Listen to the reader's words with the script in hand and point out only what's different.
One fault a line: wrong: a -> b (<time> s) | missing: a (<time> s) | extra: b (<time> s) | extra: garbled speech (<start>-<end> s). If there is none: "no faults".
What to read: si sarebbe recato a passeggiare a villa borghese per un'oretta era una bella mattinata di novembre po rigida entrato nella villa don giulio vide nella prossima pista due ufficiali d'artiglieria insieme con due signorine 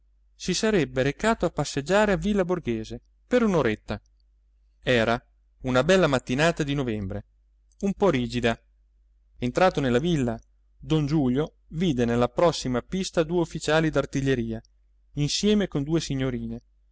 extra: un (7.8 s)